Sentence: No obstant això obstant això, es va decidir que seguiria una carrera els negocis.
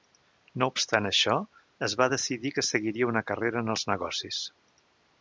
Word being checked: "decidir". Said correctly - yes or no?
yes